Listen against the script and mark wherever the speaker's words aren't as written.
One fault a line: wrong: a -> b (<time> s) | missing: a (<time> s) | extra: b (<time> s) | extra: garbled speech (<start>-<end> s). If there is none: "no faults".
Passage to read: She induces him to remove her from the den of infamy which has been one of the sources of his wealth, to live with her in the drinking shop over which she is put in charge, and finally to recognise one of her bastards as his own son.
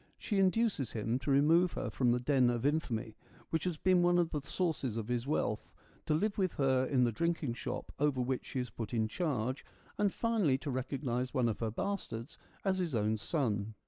no faults